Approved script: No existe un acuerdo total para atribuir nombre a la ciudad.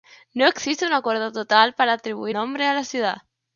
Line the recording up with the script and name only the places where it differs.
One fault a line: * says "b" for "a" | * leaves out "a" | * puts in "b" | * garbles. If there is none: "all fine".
all fine